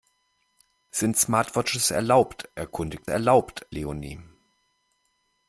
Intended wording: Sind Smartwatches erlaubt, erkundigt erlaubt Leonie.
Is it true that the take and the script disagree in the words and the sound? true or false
false